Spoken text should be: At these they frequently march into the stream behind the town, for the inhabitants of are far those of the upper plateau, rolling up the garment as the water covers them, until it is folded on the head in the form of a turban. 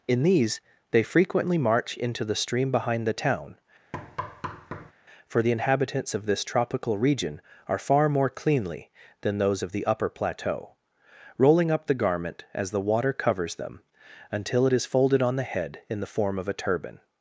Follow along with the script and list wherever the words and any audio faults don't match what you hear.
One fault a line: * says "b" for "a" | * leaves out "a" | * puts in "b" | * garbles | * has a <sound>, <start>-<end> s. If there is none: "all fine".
* says "In" for "At"
* has a thud, 3.9-4.9 s
* puts in "this tropical region"
* puts in "more cleanly than"